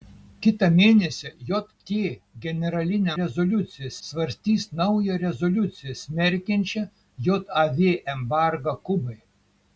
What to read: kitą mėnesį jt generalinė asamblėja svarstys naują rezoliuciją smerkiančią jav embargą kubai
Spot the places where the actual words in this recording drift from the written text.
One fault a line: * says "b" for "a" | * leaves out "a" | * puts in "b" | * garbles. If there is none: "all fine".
* says "rezoliuciją" for "asamblėja"